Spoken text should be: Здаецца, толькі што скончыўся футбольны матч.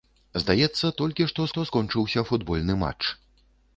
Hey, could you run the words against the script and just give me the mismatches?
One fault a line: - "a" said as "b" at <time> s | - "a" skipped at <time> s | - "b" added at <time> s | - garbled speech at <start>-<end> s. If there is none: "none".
- "што" added at 1.5 s